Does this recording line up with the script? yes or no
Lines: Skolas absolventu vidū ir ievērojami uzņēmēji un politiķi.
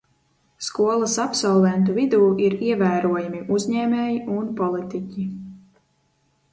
yes